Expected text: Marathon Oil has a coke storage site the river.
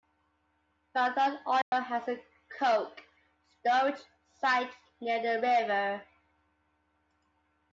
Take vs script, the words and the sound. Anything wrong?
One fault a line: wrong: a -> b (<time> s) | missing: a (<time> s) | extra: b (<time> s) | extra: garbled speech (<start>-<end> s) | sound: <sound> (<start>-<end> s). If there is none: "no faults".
sound: dropout (1.6-1.7 s)
extra: near (5.0 s)